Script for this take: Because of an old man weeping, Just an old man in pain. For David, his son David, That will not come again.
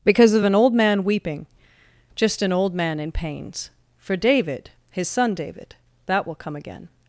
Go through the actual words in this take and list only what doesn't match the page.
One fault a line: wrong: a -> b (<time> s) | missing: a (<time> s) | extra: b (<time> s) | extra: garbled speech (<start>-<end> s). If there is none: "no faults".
wrong: pain -> pains (3.1 s)
missing: not (6.3 s)